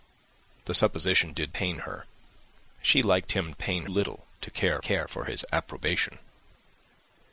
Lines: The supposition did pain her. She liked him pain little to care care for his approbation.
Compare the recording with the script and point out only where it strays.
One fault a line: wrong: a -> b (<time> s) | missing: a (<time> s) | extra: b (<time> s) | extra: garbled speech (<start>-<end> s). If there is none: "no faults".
no faults